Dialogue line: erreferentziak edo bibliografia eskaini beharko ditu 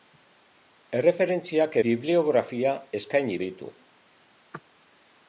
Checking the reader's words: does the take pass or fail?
fail